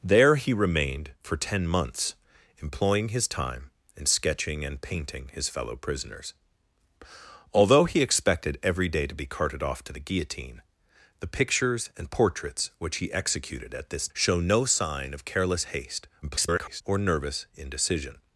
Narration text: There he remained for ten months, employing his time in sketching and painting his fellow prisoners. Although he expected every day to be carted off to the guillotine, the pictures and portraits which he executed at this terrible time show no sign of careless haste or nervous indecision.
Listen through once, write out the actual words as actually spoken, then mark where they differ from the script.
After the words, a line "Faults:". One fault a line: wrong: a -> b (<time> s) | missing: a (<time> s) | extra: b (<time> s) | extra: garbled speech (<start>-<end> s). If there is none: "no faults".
There he remained for ten months, employing his time in sketching and painting his fellow prisoners. Although he expected every day to be carted off to the guillotine, the pictures and portraits which he executed at this show no sign of careless haste [garbled] or nervous indecision.
Faults:
missing: terrible time (14.1 s)
extra: garbled speech (16.2-16.8 s)